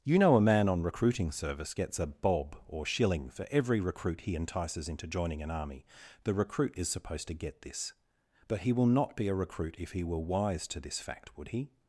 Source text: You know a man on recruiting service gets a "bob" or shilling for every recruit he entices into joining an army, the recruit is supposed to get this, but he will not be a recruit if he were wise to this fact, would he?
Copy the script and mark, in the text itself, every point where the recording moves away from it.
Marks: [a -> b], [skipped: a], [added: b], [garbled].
You know a man on recruiting service gets a "bob" or shilling for every recruit he entices into joining an army, the recruit is supposed to get this, but he will not be a recruit if he were wise to this fact, would he?